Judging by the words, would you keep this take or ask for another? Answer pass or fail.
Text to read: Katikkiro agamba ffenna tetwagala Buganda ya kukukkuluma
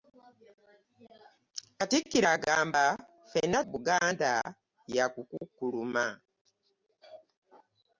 fail